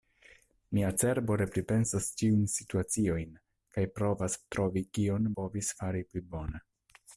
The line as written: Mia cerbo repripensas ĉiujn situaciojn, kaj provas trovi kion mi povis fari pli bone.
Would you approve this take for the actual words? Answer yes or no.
no